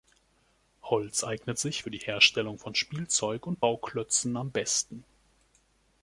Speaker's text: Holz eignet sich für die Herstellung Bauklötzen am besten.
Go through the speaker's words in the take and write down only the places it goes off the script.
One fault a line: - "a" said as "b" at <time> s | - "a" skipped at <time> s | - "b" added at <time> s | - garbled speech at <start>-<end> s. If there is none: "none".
- "von Spielzeug und" added at 2.6 s